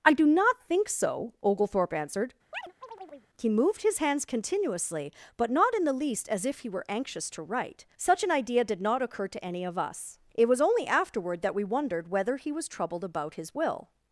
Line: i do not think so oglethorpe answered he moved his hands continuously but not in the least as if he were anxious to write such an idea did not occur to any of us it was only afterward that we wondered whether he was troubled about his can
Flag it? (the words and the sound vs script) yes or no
yes